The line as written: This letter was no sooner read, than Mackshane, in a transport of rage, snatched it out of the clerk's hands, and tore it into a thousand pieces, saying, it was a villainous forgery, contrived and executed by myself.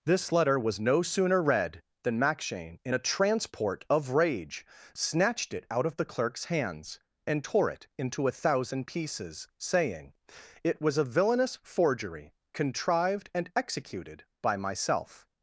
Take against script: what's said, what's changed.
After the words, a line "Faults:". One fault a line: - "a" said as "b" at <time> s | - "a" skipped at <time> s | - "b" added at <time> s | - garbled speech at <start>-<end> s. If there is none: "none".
This letter was no sooner read, than Mackshane, in a transport of rage, snatched it out of the clerk's hands, and tore it into a thousand pieces, saying, it was a villainous forgery, contrived and executed by myself.
Faults:
none